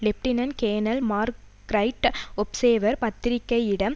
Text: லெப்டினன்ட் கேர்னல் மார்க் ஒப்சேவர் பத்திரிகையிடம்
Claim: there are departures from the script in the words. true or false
true